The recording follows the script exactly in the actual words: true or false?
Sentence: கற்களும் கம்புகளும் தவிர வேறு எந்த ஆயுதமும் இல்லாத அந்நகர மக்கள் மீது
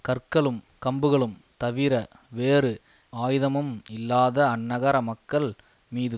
false